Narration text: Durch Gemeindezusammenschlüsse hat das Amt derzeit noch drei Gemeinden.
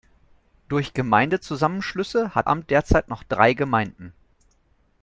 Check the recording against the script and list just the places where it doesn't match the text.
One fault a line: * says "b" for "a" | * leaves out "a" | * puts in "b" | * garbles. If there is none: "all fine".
* leaves out "das"